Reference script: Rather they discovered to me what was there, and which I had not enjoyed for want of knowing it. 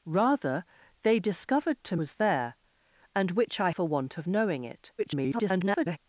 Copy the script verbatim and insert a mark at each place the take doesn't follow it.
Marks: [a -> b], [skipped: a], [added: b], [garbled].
Rather they discovered to [skipped: me what] was there, and which I [skipped: had not enjoyed] for want of knowing it. [garbled]